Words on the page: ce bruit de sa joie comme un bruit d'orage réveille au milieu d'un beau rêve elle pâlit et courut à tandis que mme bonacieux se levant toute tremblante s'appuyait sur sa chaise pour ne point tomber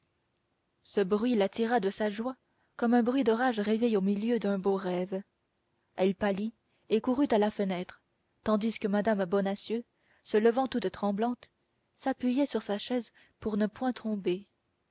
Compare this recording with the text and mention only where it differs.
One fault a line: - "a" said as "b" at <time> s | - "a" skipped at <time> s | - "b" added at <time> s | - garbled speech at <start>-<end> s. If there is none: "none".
- "la tira" added at 1.4 s
- "la fenêtre" added at 7.4 s